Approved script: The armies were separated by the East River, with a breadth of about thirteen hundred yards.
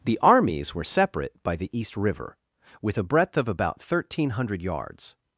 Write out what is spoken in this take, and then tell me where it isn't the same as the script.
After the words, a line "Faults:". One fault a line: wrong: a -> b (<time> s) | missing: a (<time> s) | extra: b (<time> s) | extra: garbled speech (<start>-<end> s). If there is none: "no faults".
The armies were separate by the East River, with a breadth of about thirteen hundred yards.
Faults:
wrong: separated -> separate (0.8 s)